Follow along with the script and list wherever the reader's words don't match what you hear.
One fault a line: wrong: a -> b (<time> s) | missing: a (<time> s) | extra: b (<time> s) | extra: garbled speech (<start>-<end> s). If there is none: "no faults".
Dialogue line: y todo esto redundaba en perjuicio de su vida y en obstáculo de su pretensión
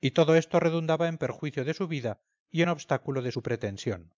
no faults